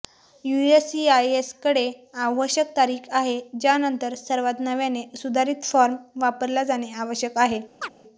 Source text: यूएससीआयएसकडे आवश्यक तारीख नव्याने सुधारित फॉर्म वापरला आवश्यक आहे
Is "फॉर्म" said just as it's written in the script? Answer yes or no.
yes